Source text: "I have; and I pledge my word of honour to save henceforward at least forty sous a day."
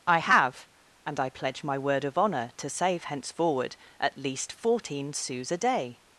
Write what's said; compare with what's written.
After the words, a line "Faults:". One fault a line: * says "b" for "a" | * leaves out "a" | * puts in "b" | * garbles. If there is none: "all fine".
"I have; and I pledge my word of honour to save henceforward at least fourteen sous a day."
Faults:
* says "fourteen" for "forty"